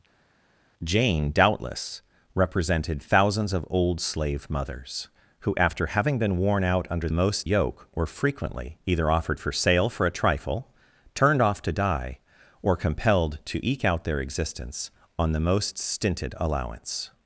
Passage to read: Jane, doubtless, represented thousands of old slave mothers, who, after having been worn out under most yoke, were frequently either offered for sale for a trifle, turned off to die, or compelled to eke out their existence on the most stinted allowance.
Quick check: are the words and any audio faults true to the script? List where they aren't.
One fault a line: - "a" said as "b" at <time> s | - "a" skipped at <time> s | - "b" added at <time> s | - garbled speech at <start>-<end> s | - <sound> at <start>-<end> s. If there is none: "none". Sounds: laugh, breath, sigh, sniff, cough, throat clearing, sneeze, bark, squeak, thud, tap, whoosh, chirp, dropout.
none